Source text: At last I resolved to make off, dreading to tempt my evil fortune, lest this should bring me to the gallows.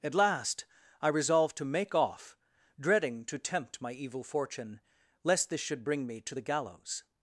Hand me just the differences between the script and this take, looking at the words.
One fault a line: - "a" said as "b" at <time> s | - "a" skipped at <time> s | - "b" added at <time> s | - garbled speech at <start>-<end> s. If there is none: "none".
none